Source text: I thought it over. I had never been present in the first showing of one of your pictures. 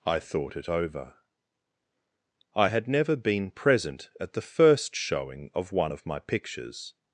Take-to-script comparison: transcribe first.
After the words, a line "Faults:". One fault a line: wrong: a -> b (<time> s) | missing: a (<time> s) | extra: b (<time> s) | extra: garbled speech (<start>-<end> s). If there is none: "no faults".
I thought it over. I had never been present at the first showing of one of my pictures.
Faults:
wrong: in -> at (4.2 s)
wrong: your -> my (6.0 s)